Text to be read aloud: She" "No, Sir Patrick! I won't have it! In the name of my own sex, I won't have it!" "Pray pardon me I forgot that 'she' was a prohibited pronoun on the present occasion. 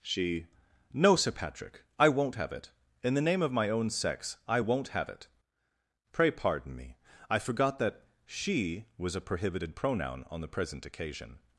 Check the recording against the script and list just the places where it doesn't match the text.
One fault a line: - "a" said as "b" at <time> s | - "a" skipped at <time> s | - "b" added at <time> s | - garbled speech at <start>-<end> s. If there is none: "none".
none